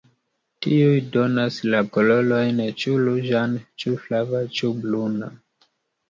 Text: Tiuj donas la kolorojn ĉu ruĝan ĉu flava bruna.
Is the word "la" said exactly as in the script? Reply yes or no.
yes